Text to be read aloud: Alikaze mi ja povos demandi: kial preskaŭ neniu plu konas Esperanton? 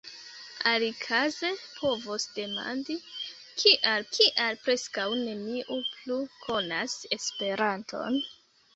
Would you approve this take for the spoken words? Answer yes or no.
no